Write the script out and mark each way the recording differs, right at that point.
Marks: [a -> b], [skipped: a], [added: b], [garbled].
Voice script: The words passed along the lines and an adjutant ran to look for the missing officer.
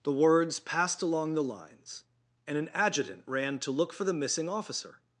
The words passed along the lines and an adjutant ran to look for the missing officer.